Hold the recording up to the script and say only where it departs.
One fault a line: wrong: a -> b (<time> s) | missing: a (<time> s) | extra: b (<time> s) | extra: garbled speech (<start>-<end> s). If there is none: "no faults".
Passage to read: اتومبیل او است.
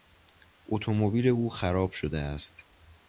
extra: خراب شده (1.5 s)